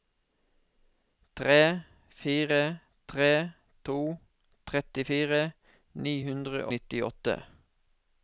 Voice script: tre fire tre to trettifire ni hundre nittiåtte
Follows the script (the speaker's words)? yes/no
yes